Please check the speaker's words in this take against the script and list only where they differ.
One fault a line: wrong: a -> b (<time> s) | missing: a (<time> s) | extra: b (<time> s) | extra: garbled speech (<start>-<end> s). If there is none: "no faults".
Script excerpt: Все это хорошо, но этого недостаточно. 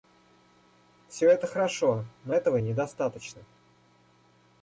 no faults